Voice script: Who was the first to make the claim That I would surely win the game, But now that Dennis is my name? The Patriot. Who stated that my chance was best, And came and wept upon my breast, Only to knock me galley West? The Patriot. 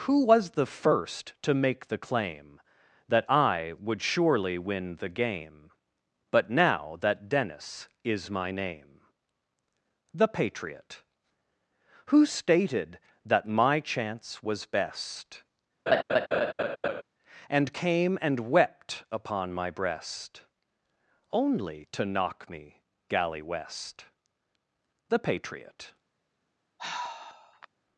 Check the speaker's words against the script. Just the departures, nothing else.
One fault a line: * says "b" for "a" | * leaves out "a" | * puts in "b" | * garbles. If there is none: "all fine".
all fine